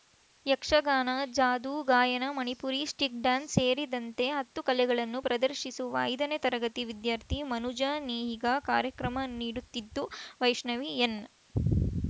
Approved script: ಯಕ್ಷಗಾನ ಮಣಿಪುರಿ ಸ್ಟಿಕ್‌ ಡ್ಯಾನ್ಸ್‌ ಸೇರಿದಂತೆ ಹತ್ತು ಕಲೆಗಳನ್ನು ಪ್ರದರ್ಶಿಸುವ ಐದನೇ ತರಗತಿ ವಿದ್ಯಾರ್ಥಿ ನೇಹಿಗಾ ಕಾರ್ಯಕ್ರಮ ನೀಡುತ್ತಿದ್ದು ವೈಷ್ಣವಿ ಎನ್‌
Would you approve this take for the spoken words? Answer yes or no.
no